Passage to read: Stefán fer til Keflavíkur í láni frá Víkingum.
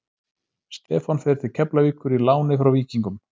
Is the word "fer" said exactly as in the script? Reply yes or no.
yes